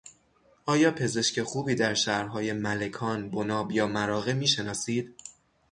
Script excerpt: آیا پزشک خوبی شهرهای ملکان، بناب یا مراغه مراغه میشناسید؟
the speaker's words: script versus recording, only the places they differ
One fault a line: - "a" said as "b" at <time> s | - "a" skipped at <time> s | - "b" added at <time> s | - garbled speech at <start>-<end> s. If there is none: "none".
- "در" added at 1.7 s
- "مراغه" skipped at 4.3 s